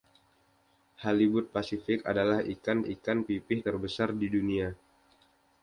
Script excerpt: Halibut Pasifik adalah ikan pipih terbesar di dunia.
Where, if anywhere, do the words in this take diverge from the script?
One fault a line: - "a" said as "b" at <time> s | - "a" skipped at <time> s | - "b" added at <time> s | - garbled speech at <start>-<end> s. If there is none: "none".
- "ikan" added at 2.8 s